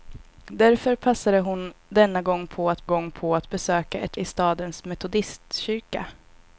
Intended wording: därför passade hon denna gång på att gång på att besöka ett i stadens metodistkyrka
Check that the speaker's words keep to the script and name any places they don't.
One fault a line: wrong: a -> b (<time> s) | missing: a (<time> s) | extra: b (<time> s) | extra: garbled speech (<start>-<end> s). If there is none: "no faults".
no faults